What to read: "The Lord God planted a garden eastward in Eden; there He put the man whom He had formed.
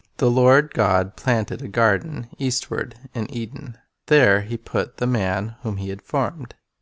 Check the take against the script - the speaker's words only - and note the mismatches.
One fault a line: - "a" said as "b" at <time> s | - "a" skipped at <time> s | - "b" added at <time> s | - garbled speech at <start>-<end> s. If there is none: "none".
none